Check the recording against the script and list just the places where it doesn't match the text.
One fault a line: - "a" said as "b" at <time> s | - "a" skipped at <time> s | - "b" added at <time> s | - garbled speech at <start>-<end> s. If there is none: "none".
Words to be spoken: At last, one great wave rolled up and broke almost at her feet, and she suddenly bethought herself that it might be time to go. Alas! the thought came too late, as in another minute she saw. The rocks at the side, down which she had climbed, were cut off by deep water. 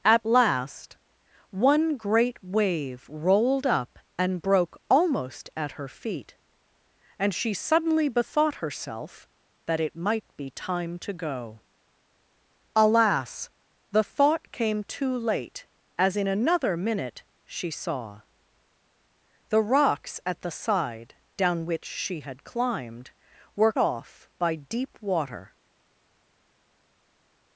- "cut" skipped at 23.7 s